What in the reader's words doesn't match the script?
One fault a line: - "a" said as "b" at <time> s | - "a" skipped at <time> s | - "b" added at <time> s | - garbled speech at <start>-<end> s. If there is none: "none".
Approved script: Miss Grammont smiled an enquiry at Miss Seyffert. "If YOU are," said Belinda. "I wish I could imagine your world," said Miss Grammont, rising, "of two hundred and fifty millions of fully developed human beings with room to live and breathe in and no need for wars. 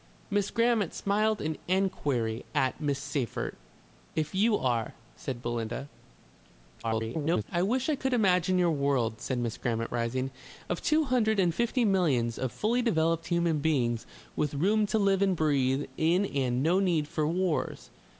- garbled speech at 6.8-7.4 s